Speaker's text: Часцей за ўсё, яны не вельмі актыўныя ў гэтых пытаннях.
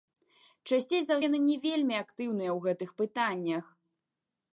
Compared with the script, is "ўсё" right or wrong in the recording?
wrong